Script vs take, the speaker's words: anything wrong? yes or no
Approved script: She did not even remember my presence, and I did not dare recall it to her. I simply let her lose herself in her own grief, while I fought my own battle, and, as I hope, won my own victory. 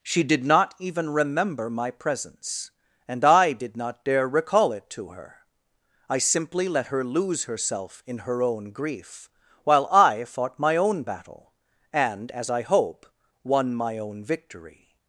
no